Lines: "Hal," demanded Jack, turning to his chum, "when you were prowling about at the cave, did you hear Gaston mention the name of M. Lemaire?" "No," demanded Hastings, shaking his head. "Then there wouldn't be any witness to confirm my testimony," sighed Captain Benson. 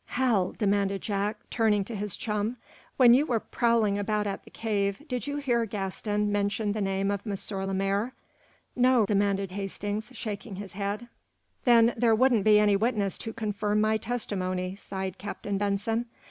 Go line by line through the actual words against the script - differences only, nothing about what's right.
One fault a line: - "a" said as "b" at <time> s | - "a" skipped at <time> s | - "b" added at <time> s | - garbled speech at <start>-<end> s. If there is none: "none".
none